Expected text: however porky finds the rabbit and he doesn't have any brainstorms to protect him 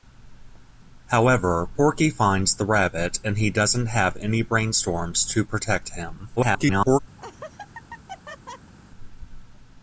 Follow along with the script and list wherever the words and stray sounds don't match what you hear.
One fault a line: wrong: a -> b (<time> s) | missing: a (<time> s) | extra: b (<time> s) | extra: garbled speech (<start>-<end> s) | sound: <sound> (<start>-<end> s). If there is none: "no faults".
extra: garbled speech (6.4-7.0 s)
sound: laugh (7.2-8.7 s)